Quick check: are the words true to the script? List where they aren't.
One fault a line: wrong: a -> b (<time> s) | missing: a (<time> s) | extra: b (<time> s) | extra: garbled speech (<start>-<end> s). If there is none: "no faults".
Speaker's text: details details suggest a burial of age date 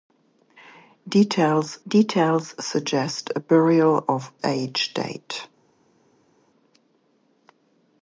no faults